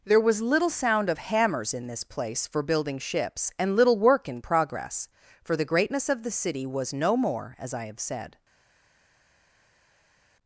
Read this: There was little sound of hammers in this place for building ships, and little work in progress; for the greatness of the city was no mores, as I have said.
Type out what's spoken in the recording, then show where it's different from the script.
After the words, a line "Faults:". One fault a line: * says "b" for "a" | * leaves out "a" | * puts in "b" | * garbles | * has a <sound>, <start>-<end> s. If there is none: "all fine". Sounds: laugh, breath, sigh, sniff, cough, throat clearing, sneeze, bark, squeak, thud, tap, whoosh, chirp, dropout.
There was little sound of hammers in this place for building ships, and little work in progress; for the greatness of the city was no more, as I have said.
Faults:
* says "more" for "mores"